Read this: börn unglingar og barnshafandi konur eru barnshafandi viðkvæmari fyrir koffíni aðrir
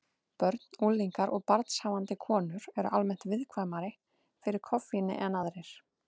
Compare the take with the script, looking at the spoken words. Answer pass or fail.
fail